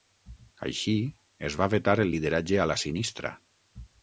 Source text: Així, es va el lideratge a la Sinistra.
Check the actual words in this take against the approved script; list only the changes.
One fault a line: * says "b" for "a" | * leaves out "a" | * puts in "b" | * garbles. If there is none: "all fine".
* puts in "vetar"